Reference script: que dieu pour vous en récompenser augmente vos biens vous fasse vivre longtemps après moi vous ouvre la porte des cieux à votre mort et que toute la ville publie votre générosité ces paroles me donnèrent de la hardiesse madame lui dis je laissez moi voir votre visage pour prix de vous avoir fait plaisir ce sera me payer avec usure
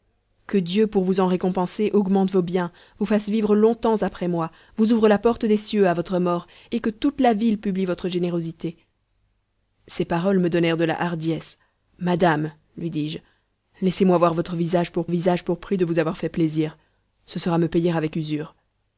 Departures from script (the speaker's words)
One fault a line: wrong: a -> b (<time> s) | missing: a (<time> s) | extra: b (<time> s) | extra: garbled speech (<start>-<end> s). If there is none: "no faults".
extra: visage pour (15.1 s)